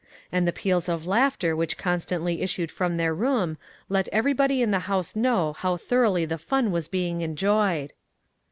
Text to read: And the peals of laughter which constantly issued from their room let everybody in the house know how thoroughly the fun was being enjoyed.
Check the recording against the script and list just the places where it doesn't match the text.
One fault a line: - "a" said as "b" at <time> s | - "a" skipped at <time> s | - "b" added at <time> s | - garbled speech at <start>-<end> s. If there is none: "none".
none